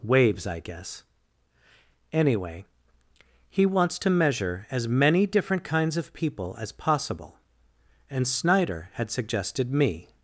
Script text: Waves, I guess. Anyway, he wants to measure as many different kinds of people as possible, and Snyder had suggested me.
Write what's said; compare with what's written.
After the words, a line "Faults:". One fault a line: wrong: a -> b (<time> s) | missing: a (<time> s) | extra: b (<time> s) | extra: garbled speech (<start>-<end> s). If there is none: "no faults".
Waves, I guess. Anyway, he wants to measure as many different kinds of people as possible, and Snyder had suggested me.
Faults:
no faults